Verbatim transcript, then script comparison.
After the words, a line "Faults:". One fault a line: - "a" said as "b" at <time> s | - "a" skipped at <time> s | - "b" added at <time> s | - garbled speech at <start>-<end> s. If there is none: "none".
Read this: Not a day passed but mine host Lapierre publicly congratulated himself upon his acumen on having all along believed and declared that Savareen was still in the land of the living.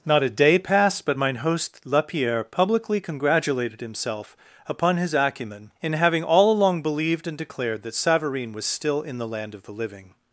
Not a day passed but mine host Lapierre publicly congratulated himself upon his acumen in having all along believed and declared that Savareen was still in the land of the living.
Faults:
- "on" said as "in" at 5.8 s